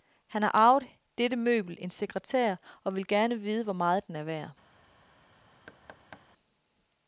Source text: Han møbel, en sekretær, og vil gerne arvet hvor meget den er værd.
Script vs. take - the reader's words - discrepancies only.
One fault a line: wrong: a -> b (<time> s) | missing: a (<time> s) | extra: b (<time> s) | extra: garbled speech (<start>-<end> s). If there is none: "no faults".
extra: har arvet dette (0.4 s)
wrong: arvet -> vide (3.4 s)